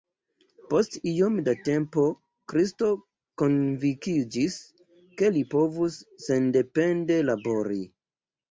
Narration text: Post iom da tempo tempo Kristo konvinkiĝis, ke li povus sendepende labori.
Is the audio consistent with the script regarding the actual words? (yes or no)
no